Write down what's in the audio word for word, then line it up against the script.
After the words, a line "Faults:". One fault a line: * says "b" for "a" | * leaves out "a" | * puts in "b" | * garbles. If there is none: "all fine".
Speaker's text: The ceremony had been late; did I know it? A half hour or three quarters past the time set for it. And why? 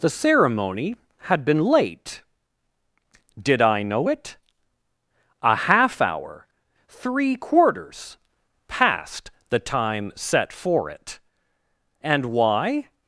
The ceremony had been late; did I know it? A half hour three quarters past the time set for it. And why?
Faults:
* leaves out "or"